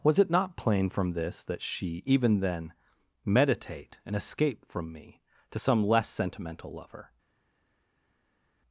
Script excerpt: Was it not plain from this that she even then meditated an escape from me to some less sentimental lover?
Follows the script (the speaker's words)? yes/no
no